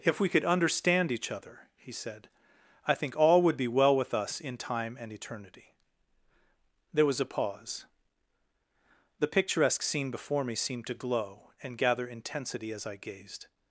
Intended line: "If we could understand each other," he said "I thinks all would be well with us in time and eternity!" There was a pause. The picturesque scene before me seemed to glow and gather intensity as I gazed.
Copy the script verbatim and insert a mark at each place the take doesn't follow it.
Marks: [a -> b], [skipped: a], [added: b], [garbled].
"If we could understand each other," he said "I [thinks -> think] all would be well with us in time and eternity!" There was a pause. The picturesque scene before me seemed to glow and gather intensity as I gazed.